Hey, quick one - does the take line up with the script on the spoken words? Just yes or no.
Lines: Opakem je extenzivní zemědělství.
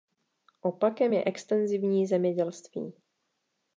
yes